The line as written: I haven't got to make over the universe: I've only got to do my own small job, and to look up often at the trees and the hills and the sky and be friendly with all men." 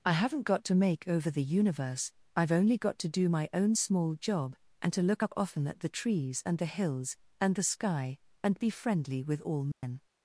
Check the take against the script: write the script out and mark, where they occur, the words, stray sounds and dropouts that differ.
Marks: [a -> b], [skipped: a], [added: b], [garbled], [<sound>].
I haven't got to make over the universe: I've only got to do my own small job, and to look up often at the trees and the hills and the sky and be friendly with all men." [dropout]